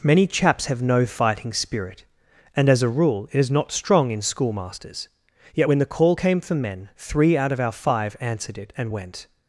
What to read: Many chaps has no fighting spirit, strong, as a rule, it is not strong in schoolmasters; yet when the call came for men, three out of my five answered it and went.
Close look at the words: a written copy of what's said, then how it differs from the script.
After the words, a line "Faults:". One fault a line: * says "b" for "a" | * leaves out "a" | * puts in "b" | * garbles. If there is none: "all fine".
Many chaps have no fighting spirit, and, as a rule, it is not strong in schoolmasters; yet when the call came for men, three out of our five answered it and went.
Faults:
* says "have" for "has"
* says "and" for "strong"
* says "our" for "my"